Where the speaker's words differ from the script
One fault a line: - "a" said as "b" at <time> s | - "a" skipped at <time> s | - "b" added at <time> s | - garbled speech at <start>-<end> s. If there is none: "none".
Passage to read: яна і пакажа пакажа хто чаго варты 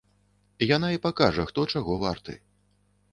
- "пакажа" skipped at 1.4 s